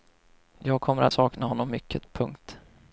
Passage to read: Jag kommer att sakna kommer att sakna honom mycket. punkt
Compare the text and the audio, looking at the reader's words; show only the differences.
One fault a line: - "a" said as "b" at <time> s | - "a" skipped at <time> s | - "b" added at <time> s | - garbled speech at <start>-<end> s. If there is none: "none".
- "kommer att sakna" skipped at 1.5 s